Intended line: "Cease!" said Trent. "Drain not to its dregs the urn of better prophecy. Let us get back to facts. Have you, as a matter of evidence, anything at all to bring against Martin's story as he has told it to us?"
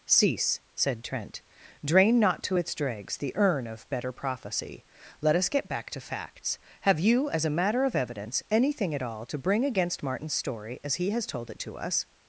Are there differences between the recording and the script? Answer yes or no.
no